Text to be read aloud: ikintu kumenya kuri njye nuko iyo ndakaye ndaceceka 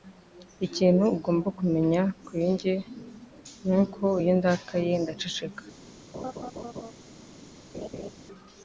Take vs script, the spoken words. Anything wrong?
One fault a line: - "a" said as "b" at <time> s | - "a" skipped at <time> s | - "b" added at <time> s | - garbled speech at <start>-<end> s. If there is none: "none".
- "ugomba" added at 1.2 s